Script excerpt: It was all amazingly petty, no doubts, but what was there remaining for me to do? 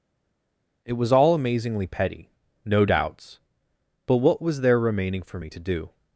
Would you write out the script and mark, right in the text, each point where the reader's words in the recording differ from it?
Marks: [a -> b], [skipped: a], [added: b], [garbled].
It was all amazingly petty, no doubts, but what was there remaining for me to do?